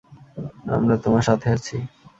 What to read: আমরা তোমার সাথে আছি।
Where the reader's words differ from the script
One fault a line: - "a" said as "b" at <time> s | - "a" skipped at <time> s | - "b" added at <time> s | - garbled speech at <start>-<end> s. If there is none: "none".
none